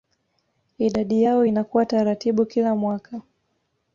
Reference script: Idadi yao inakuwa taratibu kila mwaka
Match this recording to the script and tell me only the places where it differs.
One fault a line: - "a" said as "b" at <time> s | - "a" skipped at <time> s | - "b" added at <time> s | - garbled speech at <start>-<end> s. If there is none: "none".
none